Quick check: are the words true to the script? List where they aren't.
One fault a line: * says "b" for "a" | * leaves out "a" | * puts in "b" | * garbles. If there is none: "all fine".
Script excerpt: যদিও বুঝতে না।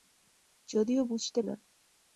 all fine